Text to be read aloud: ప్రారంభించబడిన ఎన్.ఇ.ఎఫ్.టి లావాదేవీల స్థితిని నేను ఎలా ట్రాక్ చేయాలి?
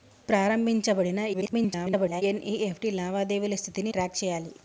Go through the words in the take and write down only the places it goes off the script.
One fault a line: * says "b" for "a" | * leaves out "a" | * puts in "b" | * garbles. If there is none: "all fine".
* garbles
* leaves out "నేను ఎలా"